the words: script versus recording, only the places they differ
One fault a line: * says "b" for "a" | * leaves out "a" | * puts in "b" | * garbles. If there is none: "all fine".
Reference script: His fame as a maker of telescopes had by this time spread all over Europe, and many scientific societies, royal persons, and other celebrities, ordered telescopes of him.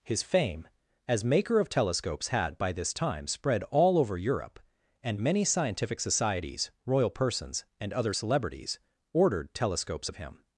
* leaves out "a"